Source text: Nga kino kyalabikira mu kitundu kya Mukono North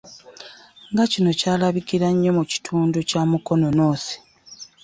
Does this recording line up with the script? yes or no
no